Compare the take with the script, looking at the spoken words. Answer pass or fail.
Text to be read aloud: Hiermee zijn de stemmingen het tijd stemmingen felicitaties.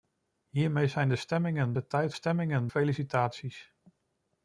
pass